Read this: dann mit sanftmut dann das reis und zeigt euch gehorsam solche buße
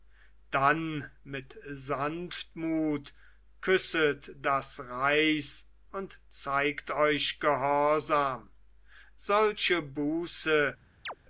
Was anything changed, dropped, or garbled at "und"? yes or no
no